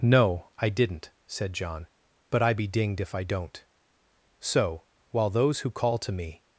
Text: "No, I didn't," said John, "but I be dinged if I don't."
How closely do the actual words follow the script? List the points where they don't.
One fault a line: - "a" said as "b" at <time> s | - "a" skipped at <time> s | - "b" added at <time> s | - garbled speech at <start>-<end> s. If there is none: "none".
- "So while those who call to me" added at 4.4 s